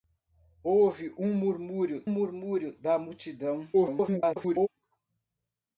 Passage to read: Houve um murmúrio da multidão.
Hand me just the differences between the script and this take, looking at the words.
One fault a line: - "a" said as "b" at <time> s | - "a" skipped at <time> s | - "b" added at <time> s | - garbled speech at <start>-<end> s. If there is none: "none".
- "murmúrio" added at 2.1 s
- garbled speech at 3.7-4.7 s